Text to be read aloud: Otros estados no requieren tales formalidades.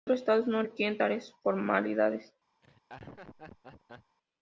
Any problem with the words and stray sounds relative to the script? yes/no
yes